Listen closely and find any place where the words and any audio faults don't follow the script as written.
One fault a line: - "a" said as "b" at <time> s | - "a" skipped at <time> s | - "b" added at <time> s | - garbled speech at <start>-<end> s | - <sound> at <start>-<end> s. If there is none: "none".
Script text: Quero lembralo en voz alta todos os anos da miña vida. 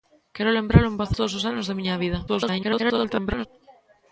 - "alta" skipped at 1.1 s
- garbled speech at 2.3-3.5 s